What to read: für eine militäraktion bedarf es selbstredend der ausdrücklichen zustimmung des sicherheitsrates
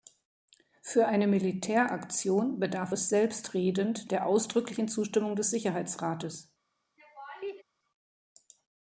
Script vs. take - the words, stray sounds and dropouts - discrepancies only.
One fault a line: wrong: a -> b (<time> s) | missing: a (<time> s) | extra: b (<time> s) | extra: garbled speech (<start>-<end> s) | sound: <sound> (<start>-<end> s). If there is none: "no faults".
sound: laugh (7.0-7.6 s)